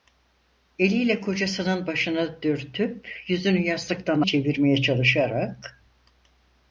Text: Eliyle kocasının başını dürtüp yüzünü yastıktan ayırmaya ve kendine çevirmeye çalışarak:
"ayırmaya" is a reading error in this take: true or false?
true